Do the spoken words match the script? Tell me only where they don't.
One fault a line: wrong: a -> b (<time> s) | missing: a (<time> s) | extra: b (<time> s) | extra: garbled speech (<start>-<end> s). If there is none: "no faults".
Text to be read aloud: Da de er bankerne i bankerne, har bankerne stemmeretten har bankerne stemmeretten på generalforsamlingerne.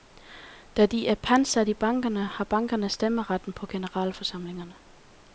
wrong: bankerne -> pantsat (1.1 s)
missing: har bankerne stemmeretten (3.5 s)